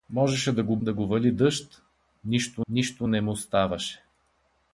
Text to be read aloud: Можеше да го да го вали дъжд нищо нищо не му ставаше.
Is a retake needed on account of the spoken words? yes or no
no